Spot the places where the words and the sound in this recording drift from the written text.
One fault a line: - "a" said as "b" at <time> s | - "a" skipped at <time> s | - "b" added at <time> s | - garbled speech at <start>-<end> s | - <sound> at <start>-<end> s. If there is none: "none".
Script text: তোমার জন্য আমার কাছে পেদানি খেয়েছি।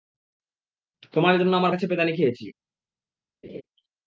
- laugh at 3.4-3.6 s